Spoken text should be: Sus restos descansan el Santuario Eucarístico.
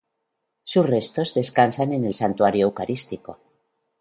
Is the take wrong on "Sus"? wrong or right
right